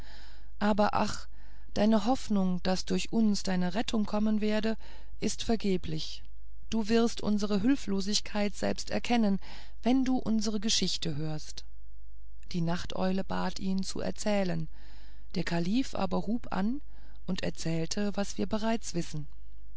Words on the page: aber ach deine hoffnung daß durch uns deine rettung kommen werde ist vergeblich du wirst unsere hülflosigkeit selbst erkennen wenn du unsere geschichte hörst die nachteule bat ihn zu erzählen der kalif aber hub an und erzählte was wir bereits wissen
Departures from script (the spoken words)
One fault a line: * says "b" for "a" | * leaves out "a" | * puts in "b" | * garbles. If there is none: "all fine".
all fine